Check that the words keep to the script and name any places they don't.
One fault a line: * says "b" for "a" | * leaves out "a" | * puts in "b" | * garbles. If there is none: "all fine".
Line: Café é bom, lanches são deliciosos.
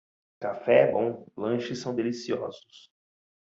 all fine